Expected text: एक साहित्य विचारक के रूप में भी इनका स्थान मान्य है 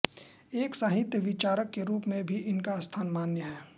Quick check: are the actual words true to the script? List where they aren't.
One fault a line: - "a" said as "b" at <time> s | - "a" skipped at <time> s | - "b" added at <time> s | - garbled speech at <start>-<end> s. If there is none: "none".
none